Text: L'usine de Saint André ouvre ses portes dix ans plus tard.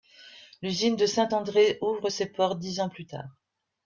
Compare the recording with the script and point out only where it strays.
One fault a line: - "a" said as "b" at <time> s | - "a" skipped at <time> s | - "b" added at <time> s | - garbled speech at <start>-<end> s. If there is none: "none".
none